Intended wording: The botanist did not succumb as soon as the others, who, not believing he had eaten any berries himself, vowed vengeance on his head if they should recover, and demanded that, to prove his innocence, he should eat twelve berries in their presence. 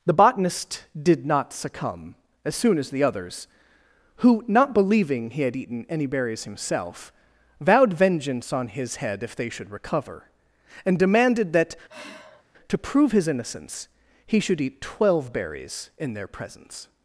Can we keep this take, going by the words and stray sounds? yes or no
no